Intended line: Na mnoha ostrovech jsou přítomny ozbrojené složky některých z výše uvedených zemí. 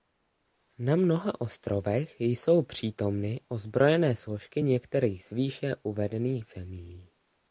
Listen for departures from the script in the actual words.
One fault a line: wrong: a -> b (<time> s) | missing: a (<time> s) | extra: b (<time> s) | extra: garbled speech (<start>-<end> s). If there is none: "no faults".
no faults